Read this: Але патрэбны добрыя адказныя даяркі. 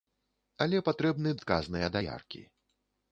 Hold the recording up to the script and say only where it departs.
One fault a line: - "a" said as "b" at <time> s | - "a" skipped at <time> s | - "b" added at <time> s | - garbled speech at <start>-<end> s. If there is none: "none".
- "добрыя" skipped at 1.4 s